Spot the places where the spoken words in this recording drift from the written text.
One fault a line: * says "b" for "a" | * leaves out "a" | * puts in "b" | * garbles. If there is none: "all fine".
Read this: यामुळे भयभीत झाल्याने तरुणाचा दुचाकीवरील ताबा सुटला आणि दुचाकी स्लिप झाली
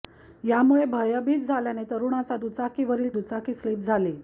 * leaves out "ताबा सुटला आणि"